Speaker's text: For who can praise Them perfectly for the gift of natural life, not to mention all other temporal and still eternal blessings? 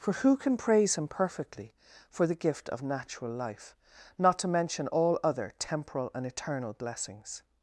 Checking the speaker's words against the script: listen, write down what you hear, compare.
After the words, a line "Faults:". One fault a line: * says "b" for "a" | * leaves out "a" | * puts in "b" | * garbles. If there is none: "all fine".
For who can praise Him perfectly for the gift of natural life, not to mention all other temporal and eternal blessings?
Faults:
* says "Him" for "Them"
* leaves out "still"